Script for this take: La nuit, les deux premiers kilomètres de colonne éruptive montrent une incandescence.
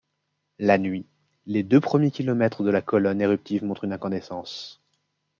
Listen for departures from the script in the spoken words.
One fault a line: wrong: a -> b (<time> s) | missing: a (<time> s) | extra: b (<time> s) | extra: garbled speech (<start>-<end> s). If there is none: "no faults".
extra: la (2.7 s)